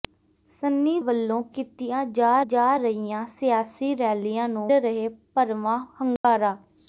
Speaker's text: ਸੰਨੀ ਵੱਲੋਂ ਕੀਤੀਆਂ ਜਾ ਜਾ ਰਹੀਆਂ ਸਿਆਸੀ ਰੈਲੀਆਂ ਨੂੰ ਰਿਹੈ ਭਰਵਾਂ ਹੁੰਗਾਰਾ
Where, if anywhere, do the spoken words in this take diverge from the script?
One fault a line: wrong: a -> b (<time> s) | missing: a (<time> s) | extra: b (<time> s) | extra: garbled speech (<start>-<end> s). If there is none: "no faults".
no faults